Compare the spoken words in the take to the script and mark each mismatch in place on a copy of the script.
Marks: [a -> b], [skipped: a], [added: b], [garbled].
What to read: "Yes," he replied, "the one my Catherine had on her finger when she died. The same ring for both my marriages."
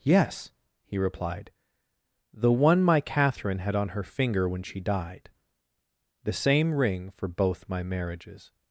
"Yes," he replied, "the one my Catherine had on her finger when she died. The same ring for both my marriages."